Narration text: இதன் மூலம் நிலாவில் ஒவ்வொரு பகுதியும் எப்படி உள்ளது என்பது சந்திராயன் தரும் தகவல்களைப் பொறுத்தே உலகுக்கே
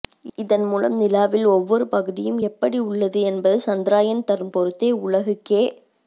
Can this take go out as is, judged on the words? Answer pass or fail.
fail